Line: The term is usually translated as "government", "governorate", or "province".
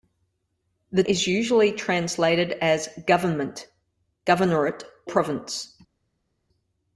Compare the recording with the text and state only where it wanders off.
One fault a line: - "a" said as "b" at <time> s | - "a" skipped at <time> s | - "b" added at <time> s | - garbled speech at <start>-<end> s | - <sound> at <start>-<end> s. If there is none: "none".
- "term" skipped at 1.0 s
- "or" skipped at 4.8 s